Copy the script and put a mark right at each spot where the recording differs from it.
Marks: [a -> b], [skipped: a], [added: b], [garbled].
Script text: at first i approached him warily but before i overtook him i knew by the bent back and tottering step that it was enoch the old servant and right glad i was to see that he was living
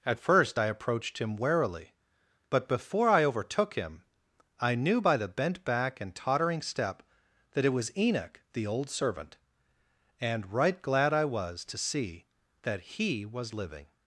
at first i approached him warily but before i overtook him i knew by the bent back and tottering step that it was enoch the old servant and right glad i was to see that he was living